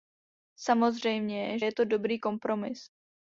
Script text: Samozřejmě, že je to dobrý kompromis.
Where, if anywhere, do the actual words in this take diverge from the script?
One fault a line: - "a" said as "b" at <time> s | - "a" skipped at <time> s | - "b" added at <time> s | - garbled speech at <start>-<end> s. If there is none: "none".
- "že" skipped at 1.6 s